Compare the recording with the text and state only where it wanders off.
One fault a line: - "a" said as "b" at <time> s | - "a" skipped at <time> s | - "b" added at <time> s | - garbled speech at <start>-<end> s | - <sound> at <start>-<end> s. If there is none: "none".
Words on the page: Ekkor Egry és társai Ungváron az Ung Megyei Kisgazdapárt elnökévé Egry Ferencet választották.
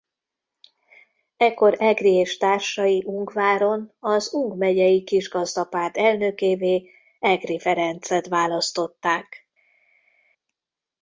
none